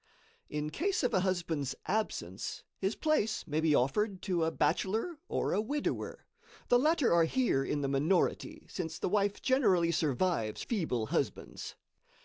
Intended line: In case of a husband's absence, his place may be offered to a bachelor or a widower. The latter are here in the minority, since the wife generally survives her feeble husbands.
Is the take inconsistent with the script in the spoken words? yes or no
yes